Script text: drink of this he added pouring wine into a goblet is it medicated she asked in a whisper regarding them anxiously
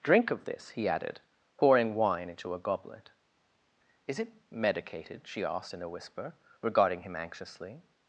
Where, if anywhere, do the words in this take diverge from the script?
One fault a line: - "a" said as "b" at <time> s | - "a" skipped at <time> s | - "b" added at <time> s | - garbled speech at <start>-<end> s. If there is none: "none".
- "them" said as "him" at 7.0 s